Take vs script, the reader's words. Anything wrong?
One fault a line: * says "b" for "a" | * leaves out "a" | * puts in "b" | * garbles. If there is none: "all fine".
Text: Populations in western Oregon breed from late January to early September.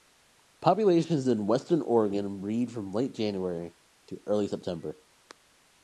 all fine